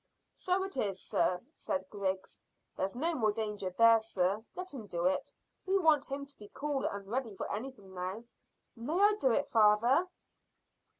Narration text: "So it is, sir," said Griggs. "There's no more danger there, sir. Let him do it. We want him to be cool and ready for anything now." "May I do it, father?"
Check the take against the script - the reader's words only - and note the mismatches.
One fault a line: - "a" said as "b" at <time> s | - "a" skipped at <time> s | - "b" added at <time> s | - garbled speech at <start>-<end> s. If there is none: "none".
none